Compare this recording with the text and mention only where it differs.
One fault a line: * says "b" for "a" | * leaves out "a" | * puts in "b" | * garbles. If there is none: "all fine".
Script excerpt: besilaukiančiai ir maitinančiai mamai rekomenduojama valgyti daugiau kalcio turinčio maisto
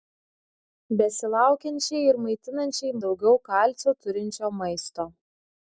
* leaves out "mamai rekomenduojama valgyti"